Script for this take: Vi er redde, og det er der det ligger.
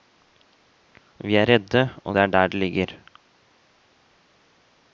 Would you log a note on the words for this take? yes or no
no